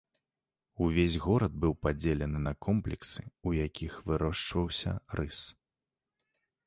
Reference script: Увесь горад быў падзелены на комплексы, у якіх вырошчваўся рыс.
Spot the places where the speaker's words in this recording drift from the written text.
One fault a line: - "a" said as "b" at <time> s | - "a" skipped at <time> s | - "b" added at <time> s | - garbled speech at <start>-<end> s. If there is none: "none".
none